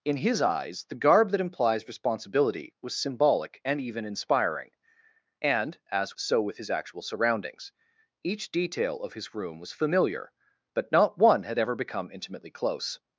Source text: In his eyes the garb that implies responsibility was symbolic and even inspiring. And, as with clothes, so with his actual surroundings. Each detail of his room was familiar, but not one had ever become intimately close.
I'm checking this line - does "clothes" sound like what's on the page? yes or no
no